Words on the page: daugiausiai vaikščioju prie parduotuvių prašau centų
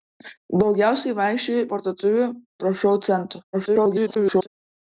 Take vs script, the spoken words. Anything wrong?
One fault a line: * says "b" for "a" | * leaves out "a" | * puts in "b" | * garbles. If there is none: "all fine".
* leaves out "prie"
* garbles